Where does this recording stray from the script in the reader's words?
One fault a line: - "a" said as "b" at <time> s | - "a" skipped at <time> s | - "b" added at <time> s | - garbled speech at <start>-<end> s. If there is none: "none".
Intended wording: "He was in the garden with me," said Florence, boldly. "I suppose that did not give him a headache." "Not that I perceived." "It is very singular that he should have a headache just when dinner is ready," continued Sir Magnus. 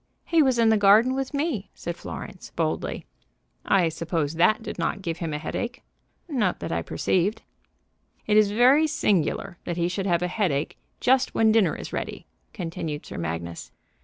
none